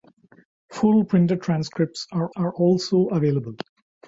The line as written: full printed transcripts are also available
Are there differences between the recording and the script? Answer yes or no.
yes